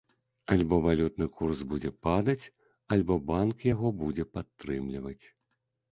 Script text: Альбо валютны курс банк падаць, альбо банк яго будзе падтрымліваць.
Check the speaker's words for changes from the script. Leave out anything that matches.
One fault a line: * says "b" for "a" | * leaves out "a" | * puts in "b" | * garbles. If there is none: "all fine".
* says "будзе" for "банк"